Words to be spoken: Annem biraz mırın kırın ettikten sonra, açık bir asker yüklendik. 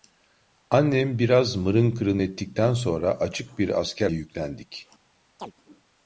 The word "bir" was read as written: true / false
true